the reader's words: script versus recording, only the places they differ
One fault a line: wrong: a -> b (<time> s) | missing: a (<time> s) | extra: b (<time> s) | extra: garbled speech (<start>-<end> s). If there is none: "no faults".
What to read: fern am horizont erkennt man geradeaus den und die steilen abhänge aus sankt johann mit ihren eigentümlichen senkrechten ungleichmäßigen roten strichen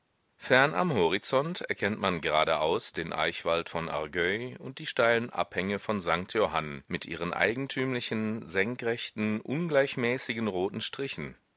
extra: eichwald von argueil (3.1 s)
wrong: aus -> von (5.8 s)